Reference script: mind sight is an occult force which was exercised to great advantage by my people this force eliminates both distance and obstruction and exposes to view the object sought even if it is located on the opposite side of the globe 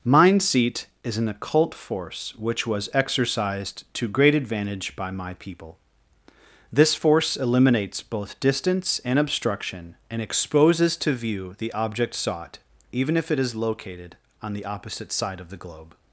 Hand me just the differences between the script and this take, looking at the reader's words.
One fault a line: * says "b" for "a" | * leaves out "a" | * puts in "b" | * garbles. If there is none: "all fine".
* says "seat" for "sight"